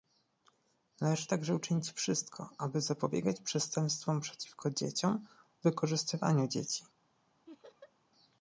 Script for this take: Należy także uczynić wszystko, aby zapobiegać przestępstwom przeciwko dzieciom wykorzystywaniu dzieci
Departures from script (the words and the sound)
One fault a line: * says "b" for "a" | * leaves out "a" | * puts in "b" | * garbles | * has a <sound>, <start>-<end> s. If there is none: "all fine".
* has a laugh, 7.5-7.9 s